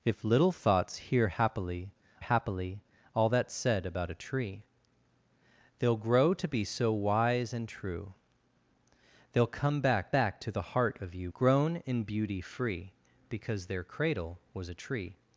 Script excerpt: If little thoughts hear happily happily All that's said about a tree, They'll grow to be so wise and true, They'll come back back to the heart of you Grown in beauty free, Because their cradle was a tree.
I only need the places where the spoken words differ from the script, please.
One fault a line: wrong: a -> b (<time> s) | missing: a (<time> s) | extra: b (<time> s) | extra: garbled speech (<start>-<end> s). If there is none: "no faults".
no faults